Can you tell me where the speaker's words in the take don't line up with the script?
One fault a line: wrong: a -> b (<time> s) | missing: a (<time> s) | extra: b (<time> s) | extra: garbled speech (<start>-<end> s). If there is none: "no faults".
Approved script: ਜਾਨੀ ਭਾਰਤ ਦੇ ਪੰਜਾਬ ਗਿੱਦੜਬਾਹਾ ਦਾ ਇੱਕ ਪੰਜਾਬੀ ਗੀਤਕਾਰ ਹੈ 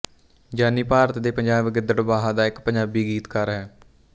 no faults